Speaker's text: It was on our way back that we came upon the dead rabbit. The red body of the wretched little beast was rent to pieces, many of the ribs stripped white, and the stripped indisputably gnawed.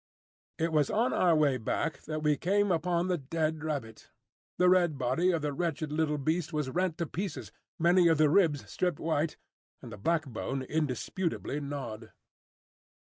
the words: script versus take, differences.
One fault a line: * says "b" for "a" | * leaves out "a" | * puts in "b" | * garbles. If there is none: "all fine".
* says "backbone" for "stripped"